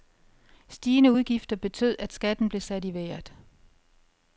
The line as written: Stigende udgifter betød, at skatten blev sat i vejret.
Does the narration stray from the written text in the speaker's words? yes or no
no